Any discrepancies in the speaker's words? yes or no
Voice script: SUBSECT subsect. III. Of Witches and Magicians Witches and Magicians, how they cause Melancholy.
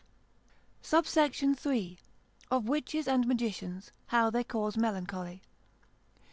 yes